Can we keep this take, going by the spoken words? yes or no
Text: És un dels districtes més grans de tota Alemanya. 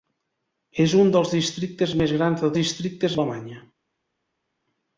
no